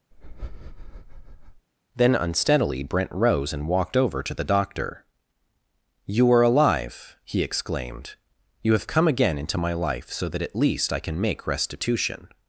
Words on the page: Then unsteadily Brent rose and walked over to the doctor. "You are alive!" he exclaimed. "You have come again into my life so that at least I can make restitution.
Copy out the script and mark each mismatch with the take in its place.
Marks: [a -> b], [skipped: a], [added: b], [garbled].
Then unsteadily Brent rose and walked over to the doctor. "You are alive!" he exclaimed. "You have come again into my life so that at least I can make restitution.